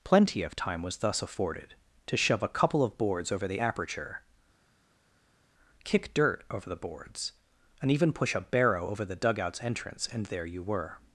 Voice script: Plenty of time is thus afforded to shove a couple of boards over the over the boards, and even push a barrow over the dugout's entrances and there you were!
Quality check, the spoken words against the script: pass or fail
fail